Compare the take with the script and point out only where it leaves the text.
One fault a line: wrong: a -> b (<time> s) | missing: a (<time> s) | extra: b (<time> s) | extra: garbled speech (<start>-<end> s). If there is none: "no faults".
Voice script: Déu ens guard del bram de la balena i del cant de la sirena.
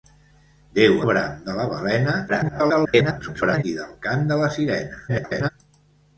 missing: ens guard del (0.9 s)
extra: garbled speech (2.3-3.6 s)
extra: garbled speech (5.1-5.5 s)